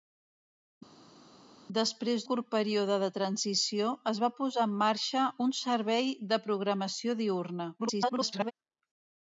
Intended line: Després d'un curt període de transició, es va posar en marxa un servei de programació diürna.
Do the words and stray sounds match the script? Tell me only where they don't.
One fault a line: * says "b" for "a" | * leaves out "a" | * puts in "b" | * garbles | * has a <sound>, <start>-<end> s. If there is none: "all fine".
* leaves out "d'un"
* garbles